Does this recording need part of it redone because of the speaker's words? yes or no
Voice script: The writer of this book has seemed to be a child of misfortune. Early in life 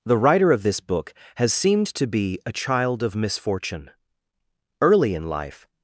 no